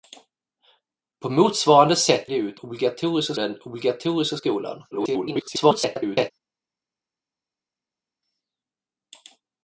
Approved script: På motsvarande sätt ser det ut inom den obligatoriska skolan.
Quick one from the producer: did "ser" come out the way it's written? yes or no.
no